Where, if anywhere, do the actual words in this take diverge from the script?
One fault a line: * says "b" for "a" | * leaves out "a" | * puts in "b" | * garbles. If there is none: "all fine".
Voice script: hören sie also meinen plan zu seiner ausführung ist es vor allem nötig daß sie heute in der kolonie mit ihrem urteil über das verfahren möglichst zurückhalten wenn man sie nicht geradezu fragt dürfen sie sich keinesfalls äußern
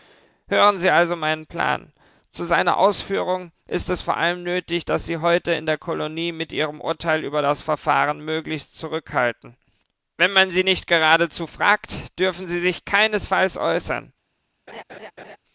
all fine